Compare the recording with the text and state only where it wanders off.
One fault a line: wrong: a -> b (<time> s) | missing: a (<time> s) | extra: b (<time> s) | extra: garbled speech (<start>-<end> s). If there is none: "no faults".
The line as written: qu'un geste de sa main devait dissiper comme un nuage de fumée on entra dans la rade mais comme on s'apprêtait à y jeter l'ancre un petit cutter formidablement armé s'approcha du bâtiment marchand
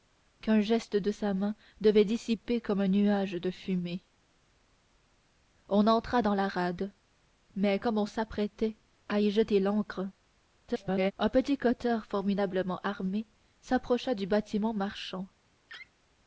extra: garbled speech (10.7-11.1 s)